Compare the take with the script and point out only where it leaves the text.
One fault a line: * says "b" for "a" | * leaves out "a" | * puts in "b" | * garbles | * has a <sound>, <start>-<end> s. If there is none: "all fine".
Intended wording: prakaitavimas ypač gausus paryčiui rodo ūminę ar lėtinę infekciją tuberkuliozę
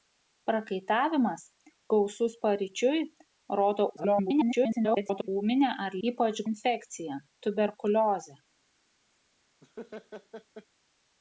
* leaves out "ypač"
* garbles
* says "ypač" for "lėtinę"
* has a laugh, 9.6-10.7 s